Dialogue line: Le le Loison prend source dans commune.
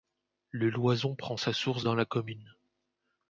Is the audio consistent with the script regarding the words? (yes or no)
no